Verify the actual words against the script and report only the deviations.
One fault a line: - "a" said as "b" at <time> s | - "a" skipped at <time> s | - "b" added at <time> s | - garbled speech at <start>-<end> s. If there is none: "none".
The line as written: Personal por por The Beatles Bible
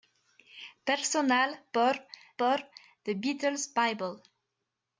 none